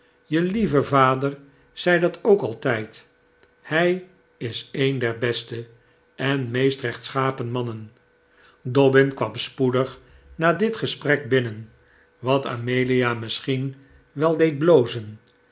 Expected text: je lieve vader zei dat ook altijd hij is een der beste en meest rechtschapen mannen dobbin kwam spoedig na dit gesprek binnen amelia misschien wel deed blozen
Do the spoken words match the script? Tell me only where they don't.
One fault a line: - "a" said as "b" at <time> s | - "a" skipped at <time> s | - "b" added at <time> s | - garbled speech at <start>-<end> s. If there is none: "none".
- "wat" added at 12.2 s